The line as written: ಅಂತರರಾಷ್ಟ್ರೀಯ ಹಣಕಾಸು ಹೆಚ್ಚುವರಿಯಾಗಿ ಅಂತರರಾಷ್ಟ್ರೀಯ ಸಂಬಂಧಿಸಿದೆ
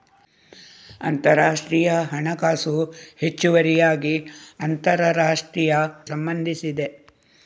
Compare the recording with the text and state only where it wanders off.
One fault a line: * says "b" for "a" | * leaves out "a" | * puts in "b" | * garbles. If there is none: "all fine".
all fine